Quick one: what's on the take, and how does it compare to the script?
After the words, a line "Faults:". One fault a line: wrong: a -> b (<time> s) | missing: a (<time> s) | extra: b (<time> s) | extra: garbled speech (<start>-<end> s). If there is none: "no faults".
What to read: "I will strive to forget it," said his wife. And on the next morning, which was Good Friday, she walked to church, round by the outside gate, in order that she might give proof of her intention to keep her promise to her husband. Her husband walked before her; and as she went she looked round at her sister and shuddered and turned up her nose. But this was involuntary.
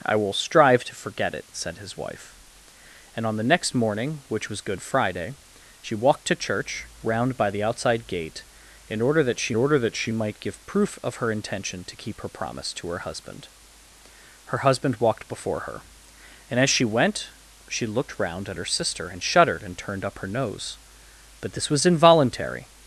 "I will strive to forget it," said his wife. And on the next morning, which was Good Friday, she walked to church, round by the outside gate, in order that she order that she might give proof of her intention to keep her promise to her husband. Her husband walked before her; and as she went she looked round at her sister and shuddered and turned up her nose. But this was involuntary.
Faults:
extra: order that she (9.6 s)